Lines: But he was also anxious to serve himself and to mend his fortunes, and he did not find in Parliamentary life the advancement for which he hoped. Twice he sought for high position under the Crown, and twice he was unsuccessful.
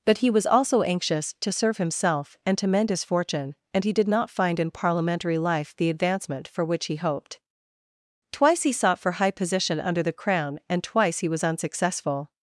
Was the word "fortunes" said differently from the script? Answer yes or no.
yes